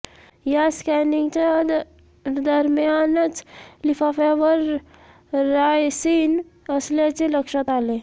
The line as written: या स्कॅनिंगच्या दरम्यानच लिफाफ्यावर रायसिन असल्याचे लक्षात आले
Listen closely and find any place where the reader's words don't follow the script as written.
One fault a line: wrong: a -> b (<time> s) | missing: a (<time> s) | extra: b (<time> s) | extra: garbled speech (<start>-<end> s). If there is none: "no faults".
no faults